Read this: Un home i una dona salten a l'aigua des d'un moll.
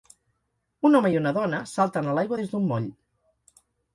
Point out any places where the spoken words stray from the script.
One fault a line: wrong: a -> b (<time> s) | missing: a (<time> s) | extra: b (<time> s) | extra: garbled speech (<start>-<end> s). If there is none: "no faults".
no faults